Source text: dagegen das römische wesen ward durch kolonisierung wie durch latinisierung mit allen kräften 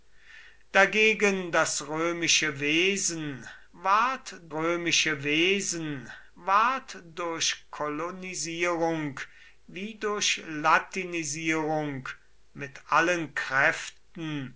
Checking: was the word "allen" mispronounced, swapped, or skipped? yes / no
no